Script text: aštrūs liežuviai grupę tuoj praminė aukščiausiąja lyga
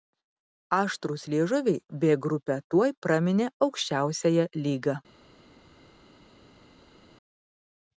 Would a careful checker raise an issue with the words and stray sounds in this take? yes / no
yes